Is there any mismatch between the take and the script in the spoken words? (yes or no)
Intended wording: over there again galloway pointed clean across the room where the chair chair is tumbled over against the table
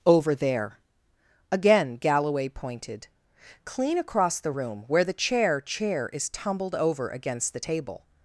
no